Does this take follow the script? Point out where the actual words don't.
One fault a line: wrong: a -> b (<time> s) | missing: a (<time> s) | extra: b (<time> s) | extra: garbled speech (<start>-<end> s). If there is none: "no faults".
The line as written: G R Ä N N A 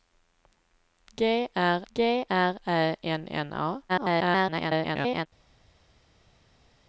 extra: g R (1.9 s)
extra: garbled speech (3.9-5.3 s)